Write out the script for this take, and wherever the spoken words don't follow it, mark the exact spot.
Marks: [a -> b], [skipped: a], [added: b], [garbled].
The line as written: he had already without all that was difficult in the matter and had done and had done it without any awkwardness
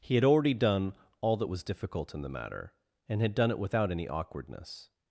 he had already [without -> done] all that was difficult in the matter and had done [skipped: and had done] it without any awkwardness